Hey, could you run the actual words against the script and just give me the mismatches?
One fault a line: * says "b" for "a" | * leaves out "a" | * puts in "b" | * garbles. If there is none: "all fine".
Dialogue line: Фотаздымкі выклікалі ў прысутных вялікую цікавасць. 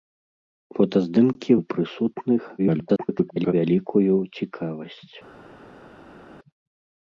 * leaves out "выклікалі"
* garbles